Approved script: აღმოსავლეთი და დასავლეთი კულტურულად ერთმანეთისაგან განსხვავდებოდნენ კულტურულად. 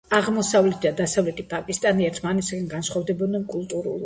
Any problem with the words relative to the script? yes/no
yes